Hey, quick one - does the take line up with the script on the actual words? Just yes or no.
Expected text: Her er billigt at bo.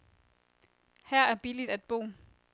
yes